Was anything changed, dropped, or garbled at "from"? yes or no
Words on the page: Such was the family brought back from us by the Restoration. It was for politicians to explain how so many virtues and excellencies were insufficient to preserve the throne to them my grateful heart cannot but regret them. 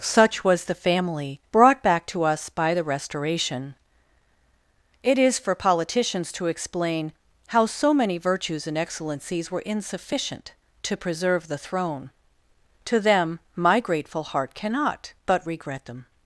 yes